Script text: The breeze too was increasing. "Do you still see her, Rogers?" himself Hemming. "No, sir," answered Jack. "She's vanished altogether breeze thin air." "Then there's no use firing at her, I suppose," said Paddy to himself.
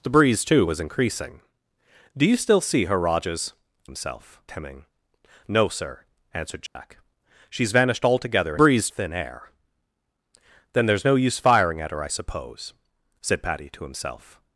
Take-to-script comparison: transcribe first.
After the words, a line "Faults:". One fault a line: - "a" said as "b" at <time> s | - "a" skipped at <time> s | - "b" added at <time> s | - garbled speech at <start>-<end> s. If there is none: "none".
The breeze too was increasing. "Do you still see her, Rogers?" himself Hemming. "No, sir," answered Jack. "She's vanished altogether breeze thin air." "Then there's no use firing at her, I suppose," said Paddy to himself.
Faults:
none